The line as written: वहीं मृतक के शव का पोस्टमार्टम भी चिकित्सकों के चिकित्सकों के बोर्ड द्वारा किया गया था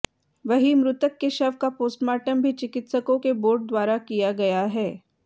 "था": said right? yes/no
no